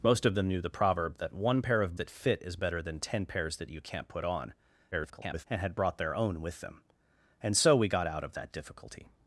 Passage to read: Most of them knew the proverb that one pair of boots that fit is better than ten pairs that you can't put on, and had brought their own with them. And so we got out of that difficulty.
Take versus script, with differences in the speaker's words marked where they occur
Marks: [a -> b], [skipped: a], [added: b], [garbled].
Most of them knew the proverb that one pair of [skipped: boots] that fit is better than ten pairs that you can't put on, [garbled] and had brought their own with them. And so we got out of that difficulty.